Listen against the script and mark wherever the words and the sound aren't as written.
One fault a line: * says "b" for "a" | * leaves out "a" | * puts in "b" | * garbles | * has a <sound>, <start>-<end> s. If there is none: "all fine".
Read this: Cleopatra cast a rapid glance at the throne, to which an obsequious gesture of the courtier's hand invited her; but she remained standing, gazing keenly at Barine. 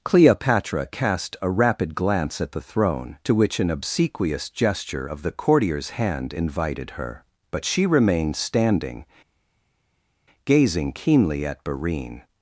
all fine